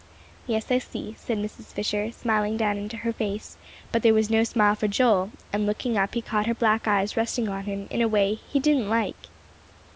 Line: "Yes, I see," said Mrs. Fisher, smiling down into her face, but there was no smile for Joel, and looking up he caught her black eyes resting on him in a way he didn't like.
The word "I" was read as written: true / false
true